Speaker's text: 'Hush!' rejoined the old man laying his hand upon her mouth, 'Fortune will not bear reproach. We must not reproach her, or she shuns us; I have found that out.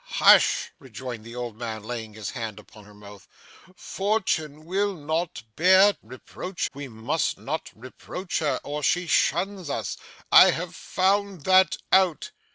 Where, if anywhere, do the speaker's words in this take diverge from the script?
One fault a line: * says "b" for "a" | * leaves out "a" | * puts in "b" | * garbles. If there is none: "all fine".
all fine